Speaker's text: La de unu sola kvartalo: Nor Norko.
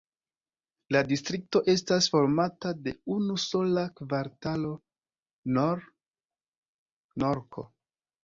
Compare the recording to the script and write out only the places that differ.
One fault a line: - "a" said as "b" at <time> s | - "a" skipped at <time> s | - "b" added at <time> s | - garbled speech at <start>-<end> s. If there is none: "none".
- "distrikto estas formata" added at 1.1 s